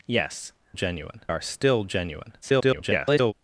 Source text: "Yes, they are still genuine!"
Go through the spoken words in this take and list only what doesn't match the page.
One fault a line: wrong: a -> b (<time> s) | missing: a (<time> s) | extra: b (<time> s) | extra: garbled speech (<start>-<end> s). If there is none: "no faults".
wrong: they -> genuine (0.7 s)
extra: garbled speech (2.4-3.3 s)